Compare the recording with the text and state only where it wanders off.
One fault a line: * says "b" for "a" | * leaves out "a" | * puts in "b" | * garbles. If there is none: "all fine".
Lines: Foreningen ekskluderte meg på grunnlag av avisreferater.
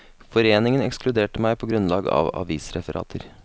all fine